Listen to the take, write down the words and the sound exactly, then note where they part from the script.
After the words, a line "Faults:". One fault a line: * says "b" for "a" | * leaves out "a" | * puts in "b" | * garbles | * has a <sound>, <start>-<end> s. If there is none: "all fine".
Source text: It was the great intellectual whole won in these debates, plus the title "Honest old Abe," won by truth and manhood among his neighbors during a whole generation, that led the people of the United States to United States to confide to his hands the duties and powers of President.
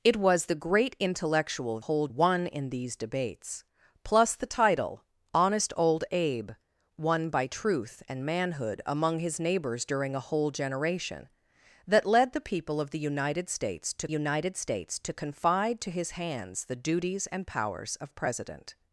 It was the great intellectual whole won in these debates, plus the title "Honest old Abe," won by truth and manhood among his neighbors during a whole generation, that led the people of the United States to United States to confide to his hands the duties and powers of President.
Faults:
all fine